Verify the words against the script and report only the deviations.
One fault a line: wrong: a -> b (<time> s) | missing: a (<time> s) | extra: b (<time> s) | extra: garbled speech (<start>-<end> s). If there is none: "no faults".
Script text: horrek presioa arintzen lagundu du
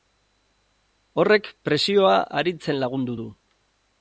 no faults